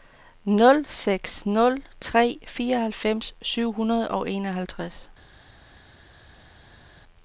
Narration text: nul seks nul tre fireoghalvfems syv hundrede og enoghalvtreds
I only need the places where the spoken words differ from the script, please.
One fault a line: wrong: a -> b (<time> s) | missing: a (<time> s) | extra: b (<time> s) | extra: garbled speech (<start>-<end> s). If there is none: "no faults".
no faults